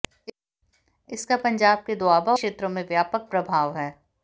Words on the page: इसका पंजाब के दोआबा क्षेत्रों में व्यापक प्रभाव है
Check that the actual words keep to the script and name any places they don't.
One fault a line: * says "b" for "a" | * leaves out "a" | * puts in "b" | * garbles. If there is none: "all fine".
all fine